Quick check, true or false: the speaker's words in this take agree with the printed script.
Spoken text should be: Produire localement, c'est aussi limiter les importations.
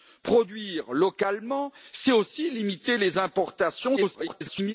false